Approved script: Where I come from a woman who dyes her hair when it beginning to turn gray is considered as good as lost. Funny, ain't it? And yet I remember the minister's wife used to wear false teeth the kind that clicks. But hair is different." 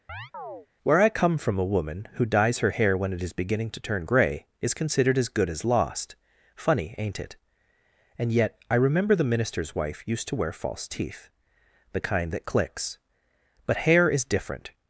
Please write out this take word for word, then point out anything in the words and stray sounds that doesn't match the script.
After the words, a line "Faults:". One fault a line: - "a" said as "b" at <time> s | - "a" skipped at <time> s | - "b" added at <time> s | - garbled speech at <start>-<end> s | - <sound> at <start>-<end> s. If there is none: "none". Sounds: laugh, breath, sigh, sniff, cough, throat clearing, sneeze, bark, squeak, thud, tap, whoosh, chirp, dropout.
Where I come from a woman who dyes her hair when it is beginning to turn gray is considered as good as lost. Funny, ain't it? And yet I remember the minister's wife used to wear false teeth the kind that clicks. But hair is different."
Faults:
- chirp at 0.1-0.7 s
- "is" added at 3.2 s